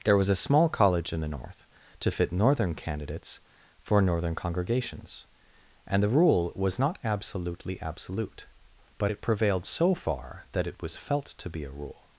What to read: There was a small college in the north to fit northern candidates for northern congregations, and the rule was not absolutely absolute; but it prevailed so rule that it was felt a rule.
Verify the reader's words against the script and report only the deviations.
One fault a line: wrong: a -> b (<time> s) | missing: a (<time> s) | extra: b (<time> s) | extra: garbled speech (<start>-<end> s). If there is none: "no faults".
wrong: rule -> far (9.9 s)
extra: to be (11.3 s)